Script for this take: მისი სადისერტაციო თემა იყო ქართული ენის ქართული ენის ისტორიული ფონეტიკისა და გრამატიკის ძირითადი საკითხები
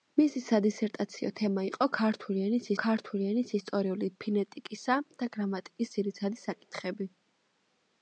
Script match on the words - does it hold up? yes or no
yes